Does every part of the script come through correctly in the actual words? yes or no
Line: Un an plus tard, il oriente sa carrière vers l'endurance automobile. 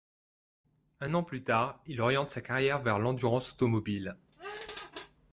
yes